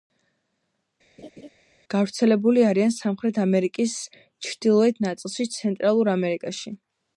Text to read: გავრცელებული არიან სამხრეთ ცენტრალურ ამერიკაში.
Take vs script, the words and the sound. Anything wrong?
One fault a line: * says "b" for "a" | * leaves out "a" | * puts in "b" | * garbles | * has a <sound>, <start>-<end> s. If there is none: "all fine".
* has a laugh, 1.2-1.5 s
* puts in "ამერიკის ჩრდილოეთ ნაწილში"